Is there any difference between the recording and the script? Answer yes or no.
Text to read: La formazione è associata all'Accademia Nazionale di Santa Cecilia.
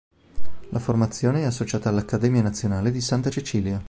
no